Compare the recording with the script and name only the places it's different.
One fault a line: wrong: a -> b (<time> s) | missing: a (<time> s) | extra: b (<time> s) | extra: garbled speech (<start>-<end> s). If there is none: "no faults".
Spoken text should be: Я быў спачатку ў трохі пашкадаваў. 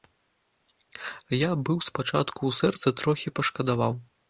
extra: сэрцы (2.6 s)